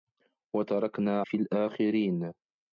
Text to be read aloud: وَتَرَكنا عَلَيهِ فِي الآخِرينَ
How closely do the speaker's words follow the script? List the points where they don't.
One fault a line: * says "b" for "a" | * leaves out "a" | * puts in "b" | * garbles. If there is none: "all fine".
* leaves out "عَلَيهِ"